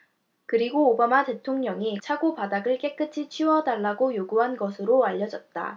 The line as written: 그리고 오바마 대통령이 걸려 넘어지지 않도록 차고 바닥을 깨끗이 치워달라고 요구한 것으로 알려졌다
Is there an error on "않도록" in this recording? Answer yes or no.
yes